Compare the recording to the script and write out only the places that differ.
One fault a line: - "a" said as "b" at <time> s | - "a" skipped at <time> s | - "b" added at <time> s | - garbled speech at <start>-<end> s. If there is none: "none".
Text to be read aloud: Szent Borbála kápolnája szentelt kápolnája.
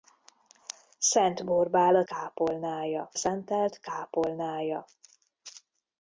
none